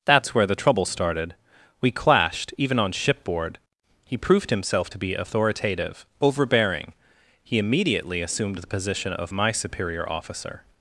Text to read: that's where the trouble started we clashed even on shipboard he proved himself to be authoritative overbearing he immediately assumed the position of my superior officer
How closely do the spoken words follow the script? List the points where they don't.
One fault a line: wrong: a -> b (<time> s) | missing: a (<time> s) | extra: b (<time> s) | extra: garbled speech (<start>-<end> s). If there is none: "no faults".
no faults